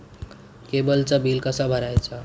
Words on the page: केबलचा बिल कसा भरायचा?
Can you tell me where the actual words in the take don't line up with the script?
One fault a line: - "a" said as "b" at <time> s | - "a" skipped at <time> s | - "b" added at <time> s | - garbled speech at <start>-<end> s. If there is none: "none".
none